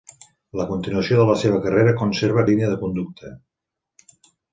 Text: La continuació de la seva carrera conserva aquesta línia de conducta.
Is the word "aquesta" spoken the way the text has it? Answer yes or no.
no